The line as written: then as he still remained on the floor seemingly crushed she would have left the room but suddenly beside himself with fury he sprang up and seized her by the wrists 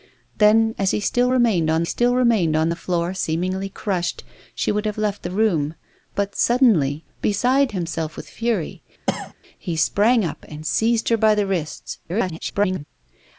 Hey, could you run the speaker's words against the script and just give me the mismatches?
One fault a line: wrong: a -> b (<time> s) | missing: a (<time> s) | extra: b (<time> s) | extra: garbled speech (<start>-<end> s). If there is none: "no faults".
extra: still remained on (1.8 s)
extra: garbled speech (12.0-12.8 s)